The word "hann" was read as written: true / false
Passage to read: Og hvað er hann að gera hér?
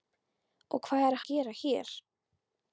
false